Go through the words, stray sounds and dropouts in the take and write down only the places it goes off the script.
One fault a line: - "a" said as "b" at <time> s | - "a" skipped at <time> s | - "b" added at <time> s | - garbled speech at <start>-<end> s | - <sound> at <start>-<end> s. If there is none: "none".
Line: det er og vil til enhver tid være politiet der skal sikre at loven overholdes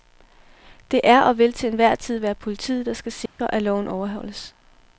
- dropout at 3.3-3.4 s